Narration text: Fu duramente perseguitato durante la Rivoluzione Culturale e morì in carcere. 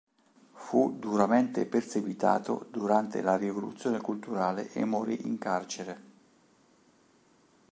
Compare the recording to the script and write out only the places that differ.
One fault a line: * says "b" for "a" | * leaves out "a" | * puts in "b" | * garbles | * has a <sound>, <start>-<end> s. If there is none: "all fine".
all fine